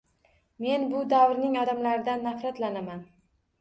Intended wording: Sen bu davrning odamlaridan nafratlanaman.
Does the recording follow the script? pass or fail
fail